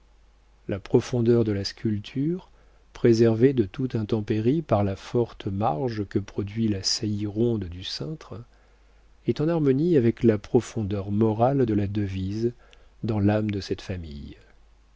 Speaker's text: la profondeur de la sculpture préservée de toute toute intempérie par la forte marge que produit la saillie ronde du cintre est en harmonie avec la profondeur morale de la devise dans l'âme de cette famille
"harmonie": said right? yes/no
yes